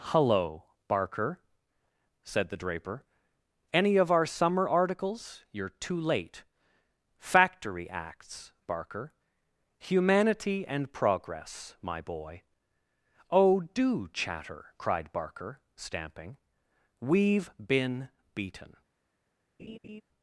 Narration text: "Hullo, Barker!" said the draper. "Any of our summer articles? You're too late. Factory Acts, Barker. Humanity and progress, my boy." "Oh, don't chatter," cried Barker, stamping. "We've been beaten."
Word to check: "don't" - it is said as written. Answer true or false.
false